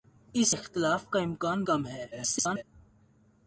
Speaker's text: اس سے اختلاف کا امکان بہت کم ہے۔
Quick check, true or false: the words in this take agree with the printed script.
false